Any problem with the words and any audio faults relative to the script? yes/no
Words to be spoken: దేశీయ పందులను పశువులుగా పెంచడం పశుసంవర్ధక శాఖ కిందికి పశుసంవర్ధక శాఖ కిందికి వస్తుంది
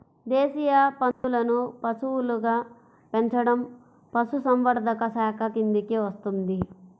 yes